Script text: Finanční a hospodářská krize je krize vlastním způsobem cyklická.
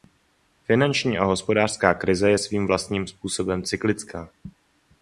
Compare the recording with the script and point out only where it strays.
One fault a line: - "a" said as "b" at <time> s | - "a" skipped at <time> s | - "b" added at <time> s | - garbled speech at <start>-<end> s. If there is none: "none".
- "krize" said as "svým" at 2.4 s